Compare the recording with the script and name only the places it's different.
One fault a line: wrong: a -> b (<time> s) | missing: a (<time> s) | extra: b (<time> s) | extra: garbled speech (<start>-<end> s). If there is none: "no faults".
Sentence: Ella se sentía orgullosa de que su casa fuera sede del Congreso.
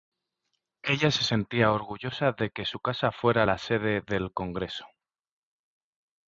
extra: la (3.4 s)